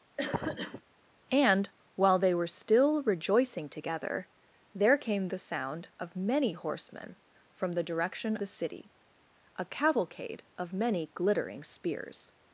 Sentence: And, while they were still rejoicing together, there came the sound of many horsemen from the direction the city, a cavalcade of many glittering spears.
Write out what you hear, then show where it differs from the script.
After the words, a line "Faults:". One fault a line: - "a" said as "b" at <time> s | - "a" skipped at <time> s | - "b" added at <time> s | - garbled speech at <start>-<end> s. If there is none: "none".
And, while they were still rejoicing together, there came the sound of many horsemen from the direction the city, a cavalcade of many glittering spears.
Faults:
none